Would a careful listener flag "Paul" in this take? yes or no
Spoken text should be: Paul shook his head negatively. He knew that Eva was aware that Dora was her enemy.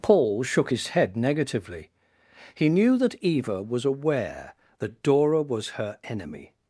no